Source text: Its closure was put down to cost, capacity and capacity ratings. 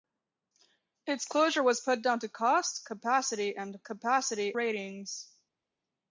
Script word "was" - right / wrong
right